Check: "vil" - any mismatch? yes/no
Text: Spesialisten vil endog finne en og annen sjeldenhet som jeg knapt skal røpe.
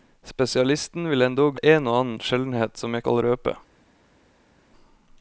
no